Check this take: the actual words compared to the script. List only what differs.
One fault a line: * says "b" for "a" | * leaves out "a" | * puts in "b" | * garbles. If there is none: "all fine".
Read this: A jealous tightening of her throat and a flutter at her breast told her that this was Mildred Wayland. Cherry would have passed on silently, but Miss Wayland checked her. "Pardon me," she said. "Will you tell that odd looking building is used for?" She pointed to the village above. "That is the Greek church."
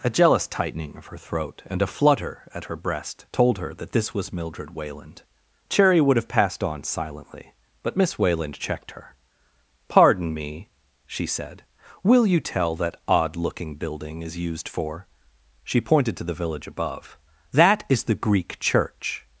all fine